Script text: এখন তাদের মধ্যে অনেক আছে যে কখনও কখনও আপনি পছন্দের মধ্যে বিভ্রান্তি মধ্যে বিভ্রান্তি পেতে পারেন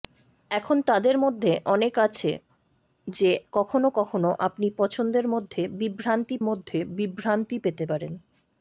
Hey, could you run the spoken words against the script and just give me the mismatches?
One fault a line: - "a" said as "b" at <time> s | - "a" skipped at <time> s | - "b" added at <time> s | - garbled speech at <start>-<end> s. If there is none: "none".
none